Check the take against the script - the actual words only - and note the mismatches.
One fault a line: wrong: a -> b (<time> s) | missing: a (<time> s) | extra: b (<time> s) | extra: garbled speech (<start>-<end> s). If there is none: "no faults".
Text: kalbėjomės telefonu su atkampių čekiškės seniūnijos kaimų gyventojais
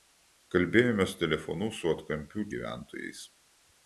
missing: čekiškės seniūnijos kaimų (2.5 s)